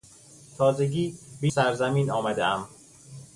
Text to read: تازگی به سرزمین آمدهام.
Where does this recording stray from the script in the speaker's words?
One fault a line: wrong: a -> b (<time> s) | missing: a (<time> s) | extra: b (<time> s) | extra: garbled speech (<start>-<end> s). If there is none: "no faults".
no faults